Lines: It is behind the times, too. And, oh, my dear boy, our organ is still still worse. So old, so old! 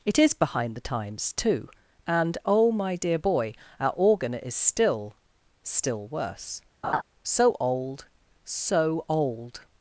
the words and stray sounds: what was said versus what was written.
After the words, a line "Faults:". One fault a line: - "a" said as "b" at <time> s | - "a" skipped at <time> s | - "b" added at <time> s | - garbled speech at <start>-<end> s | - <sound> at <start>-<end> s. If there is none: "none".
It is behind the times, too. And, oh, my dear boy, our organ is still still worse. So old, so old!
Faults:
- laugh at 6.8-7.0 s